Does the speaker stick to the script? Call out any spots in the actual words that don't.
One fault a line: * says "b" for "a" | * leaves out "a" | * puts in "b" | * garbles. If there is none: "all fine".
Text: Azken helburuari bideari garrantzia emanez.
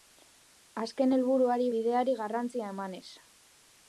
all fine